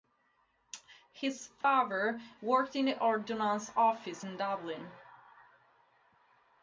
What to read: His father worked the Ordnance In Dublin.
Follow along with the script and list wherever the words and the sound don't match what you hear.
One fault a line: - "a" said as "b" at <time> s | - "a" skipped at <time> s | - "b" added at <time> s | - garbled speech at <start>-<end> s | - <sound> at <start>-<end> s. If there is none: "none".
- dropout at 1.6-1.6 s
- "in" added at 2.7 s
- "Office" added at 3.8 s